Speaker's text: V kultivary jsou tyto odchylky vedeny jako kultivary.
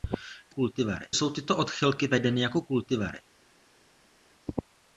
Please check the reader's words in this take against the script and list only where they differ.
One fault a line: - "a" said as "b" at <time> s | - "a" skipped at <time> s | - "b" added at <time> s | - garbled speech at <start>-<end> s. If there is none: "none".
none